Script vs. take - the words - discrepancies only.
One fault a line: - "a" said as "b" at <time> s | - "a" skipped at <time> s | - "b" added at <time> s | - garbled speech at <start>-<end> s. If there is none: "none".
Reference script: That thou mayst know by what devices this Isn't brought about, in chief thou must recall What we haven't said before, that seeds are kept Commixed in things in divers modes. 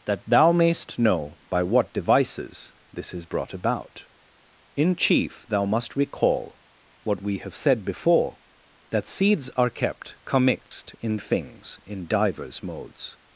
- "Isn't" said as "Is" at 3.1 s
- "haven't" said as "have" at 7.4 s